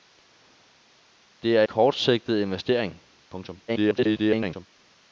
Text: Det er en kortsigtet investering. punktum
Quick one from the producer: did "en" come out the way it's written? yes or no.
no